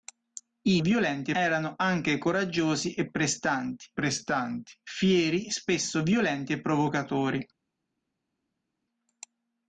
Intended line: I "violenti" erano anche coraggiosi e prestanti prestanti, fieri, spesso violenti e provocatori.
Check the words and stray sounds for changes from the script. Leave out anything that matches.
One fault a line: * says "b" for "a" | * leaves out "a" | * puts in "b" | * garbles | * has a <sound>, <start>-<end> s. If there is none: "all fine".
all fine